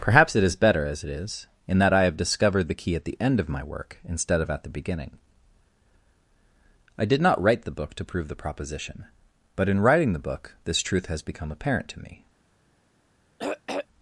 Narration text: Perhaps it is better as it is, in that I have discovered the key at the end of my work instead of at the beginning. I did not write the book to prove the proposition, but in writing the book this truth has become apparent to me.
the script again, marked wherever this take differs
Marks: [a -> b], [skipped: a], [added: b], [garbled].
Perhaps it is better as it is, in that I have discovered the key at the end of my work instead of at the beginning. I did not write the book to prove the proposition, but in writing the book this truth has become apparent to me.